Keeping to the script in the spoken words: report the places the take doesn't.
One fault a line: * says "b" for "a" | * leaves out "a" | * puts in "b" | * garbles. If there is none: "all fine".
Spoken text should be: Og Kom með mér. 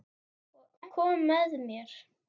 all fine